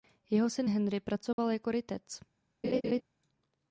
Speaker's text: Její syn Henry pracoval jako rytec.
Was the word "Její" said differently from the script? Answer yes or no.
yes